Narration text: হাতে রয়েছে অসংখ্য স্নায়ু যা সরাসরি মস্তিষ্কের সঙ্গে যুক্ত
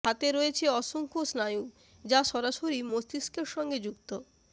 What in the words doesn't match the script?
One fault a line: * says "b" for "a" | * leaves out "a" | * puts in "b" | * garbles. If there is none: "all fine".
all fine